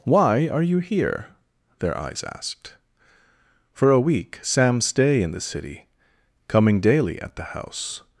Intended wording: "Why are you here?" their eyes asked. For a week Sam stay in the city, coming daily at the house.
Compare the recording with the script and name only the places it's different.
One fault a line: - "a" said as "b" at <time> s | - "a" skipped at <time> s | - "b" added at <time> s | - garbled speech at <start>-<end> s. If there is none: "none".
none